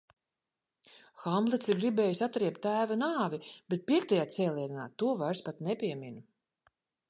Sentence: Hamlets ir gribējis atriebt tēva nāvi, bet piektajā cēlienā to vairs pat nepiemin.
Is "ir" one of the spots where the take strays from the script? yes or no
no